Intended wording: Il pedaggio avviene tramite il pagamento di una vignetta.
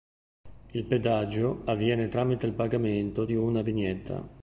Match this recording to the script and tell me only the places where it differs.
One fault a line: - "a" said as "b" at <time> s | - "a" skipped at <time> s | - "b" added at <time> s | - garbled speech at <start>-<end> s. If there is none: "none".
none